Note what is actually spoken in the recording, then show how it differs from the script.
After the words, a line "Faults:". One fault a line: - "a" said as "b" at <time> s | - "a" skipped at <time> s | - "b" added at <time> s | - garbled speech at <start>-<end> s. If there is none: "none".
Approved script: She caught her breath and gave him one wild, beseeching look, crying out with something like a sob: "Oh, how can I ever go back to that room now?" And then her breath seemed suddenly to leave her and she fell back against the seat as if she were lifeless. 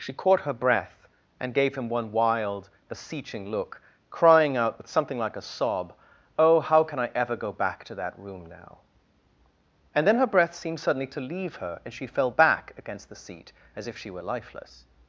She caught her breath and gave him one wild, beseeching look, crying out with something like a sob: "Oh, how can I ever go back to that room now?" And then her breath seemed suddenly to leave her and she fell back against the seat as if she were lifeless.
Faults:
none